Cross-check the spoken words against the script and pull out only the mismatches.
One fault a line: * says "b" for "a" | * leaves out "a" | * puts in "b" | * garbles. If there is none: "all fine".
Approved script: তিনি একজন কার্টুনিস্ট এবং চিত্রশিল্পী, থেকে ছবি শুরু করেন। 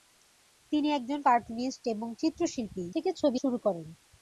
all fine